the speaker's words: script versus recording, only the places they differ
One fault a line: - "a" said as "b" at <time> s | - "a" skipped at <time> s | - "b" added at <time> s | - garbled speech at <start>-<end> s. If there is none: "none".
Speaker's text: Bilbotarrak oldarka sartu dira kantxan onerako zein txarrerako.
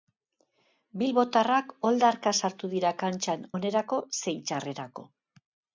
none